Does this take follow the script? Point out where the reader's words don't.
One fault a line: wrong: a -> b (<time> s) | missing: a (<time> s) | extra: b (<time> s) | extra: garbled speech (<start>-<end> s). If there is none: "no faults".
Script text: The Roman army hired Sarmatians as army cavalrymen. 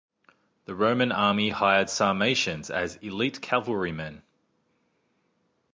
wrong: army -> elite (3.0 s)